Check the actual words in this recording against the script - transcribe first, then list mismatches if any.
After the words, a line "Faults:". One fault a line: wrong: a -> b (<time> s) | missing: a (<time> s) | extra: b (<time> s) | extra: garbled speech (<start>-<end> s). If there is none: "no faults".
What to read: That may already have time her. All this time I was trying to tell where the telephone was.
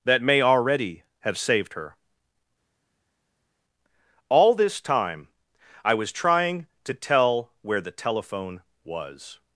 That may already have saved her. All this time I was trying to tell where the telephone was.
Faults:
wrong: time -> saved (1.4 s)